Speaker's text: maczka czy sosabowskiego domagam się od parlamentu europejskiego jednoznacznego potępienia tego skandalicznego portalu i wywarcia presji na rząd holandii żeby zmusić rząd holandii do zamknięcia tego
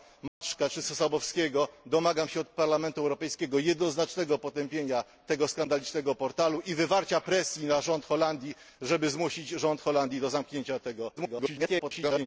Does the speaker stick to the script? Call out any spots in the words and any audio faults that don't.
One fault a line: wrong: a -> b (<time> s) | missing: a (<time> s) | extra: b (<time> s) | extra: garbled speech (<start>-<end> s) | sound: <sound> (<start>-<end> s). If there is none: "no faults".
sound: dropout (0.3-0.4 s)
extra: garbled speech (11.2-12.3 s)